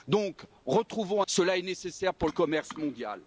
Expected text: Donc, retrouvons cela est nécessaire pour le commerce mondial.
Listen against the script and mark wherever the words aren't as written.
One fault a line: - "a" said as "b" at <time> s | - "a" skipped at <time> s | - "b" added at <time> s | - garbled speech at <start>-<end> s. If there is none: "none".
none